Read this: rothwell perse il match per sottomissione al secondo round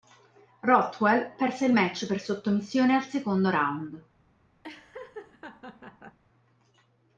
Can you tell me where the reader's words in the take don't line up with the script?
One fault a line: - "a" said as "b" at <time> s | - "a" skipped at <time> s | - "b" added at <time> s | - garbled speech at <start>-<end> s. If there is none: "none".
none